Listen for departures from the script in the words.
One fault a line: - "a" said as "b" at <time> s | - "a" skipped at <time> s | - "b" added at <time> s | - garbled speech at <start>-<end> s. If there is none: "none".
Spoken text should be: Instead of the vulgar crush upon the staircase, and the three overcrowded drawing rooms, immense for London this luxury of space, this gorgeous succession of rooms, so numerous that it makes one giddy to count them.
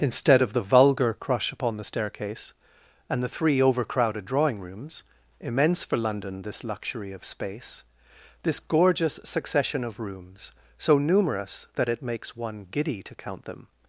none